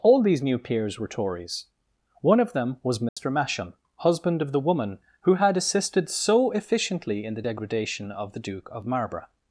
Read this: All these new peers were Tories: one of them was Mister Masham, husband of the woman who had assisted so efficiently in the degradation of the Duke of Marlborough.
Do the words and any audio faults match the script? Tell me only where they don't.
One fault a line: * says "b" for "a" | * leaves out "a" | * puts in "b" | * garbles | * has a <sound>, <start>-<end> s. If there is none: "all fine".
* has a dropout, 3.1-3.2 s